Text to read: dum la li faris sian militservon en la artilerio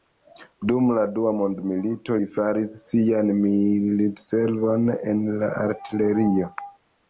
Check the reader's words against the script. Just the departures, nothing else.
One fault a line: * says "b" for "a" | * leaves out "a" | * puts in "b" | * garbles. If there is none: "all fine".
* puts in "dua mondmilito"